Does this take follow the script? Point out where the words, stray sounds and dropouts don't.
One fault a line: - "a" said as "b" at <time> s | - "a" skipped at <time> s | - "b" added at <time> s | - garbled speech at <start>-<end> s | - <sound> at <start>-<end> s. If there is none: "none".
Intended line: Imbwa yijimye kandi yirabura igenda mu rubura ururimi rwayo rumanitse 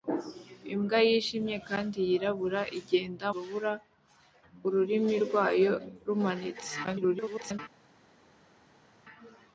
- "mu" skipped at 3.3 s
- garbled speech at 6.8-7.6 s